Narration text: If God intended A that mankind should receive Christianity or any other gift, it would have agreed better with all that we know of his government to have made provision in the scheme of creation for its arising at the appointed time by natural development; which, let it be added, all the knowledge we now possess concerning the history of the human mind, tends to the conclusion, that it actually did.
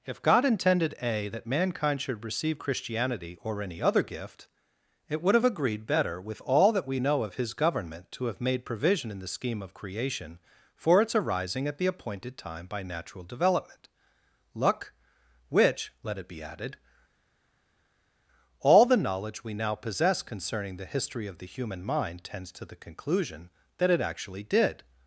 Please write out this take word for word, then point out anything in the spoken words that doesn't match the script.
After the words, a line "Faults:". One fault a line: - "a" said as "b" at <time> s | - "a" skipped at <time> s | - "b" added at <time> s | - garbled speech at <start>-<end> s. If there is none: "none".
If God intended A that mankind should receive Christianity or any other gift, it would have agreed better with all that we know of his government to have made provision in the scheme of creation for its arising at the appointed time by natural development; luck which, let it be added, all the knowledge we now possess concerning the history of the human mind, tends to the conclusion, that it actually did.
Faults:
- "luck" added at 14.5 s